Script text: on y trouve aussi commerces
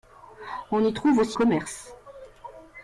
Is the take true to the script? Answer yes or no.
yes